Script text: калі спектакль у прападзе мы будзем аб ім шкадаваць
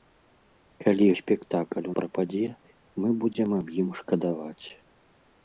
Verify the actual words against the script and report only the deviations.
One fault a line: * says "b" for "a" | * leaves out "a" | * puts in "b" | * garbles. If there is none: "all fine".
all fine